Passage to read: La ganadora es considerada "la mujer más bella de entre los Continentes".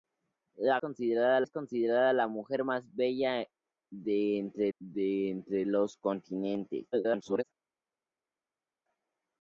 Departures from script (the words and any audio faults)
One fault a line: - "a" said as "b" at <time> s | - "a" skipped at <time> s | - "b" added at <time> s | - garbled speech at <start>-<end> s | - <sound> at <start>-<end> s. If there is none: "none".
- "ganadora" said as "considerada" at 0.8 s
- "de entre" added at 4.8 s
- garbled speech at 6.9-7.4 s